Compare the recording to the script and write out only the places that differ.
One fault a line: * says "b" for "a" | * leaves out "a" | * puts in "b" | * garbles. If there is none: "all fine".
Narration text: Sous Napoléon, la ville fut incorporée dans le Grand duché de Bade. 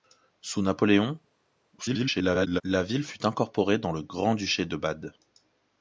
* garbles